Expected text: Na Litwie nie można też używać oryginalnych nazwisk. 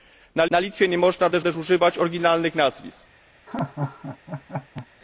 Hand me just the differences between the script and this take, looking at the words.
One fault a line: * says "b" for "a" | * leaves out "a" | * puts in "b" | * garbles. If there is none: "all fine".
* puts in "na"
* puts in "też"